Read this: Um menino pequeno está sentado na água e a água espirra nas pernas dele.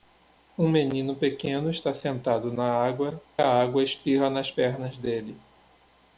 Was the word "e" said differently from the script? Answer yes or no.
yes